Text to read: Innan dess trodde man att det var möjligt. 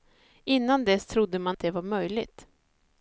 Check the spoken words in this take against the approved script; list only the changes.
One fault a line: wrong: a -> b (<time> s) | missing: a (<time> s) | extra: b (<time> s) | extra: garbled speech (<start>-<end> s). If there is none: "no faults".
no faults